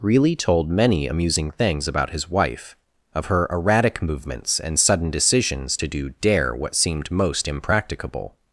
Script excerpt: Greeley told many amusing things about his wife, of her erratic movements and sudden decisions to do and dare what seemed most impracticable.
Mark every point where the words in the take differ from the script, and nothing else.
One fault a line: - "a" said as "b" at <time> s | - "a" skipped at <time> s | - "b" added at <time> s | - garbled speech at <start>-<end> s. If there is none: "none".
- "and" skipped at 6.1 s